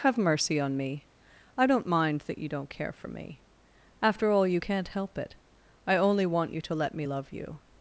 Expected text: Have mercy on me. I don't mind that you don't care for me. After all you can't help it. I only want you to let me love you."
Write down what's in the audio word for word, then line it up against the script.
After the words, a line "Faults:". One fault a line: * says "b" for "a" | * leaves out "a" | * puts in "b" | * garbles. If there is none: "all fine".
Have mercy on me. I don't mind that you don't care for me. After all you can't help it. I only want you to let me love you."
Faults:
all fine